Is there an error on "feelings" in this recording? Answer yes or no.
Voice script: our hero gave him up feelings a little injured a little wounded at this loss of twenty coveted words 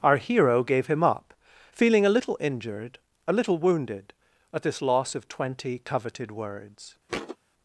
yes